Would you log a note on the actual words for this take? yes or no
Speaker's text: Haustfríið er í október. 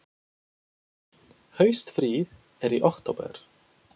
no